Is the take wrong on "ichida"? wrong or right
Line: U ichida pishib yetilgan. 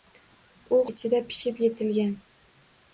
right